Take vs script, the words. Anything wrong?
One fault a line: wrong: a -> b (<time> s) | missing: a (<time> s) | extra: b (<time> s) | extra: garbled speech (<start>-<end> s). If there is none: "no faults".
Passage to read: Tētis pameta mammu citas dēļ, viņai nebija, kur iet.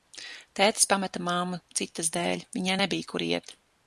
no faults